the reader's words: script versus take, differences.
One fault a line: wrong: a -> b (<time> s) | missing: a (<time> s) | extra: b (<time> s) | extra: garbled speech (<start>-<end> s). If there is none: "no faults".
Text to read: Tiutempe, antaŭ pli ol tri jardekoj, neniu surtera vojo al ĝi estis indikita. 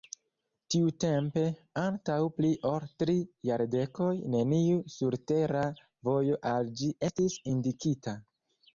no faults